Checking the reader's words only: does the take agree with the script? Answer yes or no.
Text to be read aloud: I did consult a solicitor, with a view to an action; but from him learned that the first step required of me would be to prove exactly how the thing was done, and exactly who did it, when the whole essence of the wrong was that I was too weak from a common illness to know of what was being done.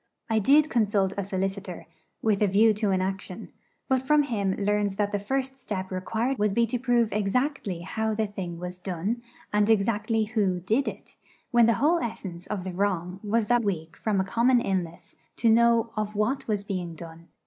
no